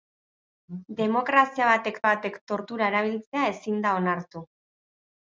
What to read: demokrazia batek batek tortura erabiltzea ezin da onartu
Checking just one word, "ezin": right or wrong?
right